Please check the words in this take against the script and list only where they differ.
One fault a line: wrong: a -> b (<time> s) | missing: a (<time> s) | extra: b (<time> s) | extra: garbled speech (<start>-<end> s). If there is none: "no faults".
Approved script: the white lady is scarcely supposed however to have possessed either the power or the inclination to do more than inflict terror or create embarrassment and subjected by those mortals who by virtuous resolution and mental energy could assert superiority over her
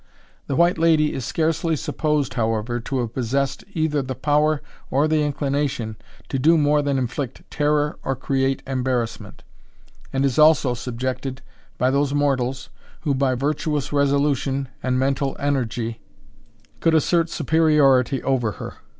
extra: is also (10.2 s)